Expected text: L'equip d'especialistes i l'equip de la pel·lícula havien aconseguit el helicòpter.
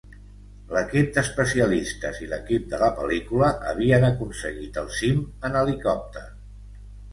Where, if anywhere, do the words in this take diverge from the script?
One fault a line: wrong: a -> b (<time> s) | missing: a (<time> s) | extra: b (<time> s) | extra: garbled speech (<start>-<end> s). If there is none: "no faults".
extra: cim en (5.0 s)